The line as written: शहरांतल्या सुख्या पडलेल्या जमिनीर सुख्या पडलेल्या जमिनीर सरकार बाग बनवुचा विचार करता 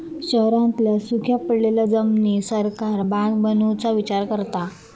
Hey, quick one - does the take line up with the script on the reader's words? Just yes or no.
no